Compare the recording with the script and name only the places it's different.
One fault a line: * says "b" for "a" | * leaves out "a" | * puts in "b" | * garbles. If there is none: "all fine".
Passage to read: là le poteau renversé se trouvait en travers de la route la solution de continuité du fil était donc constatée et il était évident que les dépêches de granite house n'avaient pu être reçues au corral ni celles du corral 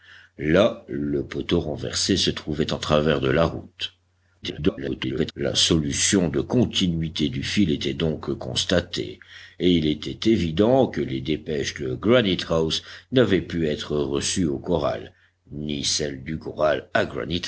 * garbles